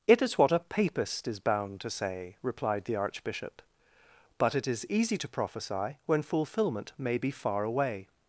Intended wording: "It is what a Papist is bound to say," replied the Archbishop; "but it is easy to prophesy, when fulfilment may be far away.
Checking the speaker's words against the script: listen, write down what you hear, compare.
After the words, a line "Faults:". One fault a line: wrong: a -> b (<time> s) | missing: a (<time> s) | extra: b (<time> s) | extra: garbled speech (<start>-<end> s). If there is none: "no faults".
"It is what a Papist is bound to say," replied the Archbishop; "but it is easy to prophesy, when fulfilment may be far away.
Faults:
no faults